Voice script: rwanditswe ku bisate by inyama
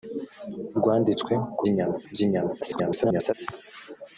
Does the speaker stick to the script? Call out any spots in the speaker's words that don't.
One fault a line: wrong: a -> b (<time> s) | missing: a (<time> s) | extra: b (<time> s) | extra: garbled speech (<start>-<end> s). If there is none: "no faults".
wrong: bisate -> inyama (1.7 s)
extra: garbled speech (2.6-3.3 s)